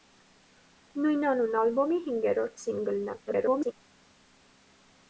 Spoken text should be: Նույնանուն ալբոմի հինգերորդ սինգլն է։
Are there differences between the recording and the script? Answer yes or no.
yes